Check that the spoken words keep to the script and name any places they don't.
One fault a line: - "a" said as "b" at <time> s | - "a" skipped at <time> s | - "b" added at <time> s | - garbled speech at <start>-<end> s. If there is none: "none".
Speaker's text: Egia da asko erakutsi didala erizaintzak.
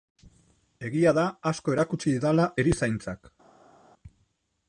none